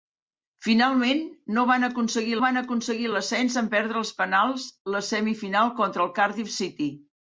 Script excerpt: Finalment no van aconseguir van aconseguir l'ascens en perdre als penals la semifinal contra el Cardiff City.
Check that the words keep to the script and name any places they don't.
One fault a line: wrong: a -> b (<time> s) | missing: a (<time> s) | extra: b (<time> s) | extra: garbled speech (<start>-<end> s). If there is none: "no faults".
no faults